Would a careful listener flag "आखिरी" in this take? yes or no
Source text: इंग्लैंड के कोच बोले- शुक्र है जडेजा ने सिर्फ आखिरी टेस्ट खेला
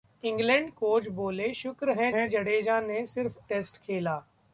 yes